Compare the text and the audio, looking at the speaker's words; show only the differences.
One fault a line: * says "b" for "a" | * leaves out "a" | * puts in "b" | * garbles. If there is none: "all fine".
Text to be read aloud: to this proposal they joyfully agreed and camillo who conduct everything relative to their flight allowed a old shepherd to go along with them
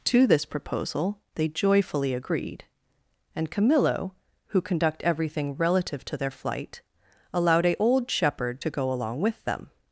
all fine